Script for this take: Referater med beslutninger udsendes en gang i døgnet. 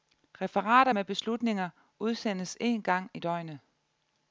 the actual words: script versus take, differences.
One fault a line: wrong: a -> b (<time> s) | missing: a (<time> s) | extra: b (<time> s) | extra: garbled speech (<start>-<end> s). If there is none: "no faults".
no faults